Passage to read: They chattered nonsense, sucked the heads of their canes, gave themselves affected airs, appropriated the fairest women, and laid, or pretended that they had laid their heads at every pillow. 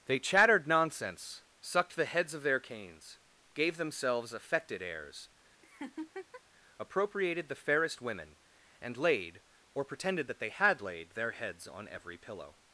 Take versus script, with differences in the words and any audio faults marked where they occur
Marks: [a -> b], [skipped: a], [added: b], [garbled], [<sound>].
They chattered nonsense, sucked the heads of their canes, gave themselves affected airs, [laugh] appropriated the fairest women, and laid, or pretended that they had laid their heads [at -> on] every pillow.